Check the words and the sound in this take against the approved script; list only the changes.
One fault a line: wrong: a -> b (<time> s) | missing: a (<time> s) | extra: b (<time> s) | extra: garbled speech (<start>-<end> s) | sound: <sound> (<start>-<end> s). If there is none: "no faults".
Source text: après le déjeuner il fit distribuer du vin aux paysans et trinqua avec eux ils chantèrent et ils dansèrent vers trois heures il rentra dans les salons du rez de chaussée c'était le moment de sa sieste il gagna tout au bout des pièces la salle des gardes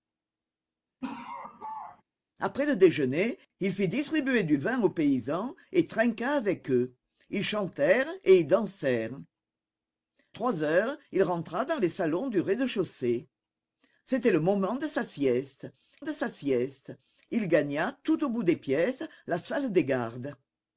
sound: laugh (1.0-2.0 s)
missing: vers (9.1 s)
extra: de sa sieste (16.0 s)